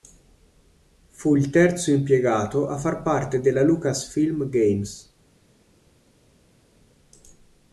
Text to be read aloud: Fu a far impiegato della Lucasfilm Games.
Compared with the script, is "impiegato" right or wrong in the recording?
wrong